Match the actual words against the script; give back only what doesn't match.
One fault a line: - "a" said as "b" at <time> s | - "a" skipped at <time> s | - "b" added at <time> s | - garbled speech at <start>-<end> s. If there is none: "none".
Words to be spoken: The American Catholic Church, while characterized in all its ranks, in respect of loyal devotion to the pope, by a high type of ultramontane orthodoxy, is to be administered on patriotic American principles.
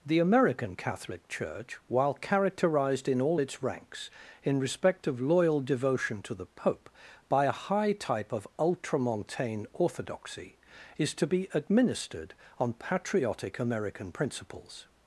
none